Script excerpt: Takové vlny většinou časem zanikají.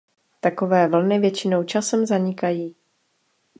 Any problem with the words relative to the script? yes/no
no